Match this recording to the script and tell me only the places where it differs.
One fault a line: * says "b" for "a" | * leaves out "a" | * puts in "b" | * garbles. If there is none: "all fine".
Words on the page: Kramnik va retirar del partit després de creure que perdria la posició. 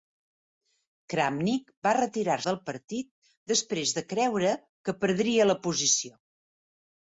all fine